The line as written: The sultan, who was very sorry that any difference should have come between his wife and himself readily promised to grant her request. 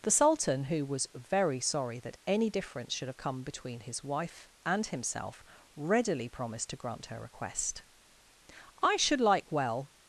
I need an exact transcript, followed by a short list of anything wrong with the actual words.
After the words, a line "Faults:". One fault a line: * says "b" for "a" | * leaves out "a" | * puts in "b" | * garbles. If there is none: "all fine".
The sultan, who was very sorry that any difference should have come between his wife and himself readily promised to grant her request. "I should like well
Faults:
* puts in "I should like well"